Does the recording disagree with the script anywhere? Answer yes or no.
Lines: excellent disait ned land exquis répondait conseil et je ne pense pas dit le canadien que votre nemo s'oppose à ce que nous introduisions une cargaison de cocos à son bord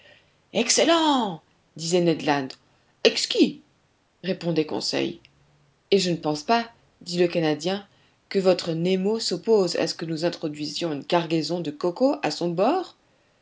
no